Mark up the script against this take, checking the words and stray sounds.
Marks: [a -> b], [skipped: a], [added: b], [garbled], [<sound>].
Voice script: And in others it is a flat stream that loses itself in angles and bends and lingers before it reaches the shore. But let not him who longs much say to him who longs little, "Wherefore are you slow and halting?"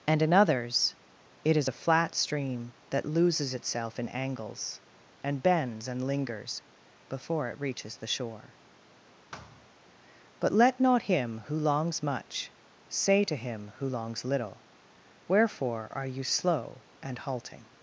And in others it is a flat stream that loses itself in angles and bends and lingers before it reaches the shore. [thud] But let not him who longs much say to him who longs little, "Wherefore are you slow and halting?"